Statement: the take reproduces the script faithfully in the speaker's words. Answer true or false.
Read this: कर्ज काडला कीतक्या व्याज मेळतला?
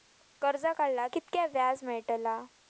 true